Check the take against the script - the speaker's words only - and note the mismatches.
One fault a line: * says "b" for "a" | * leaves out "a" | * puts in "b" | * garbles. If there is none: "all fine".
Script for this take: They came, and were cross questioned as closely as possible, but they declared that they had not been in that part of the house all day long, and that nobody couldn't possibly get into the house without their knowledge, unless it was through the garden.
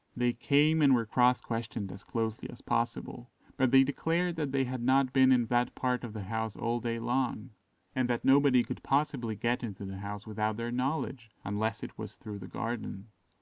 * says "could" for "couldn't"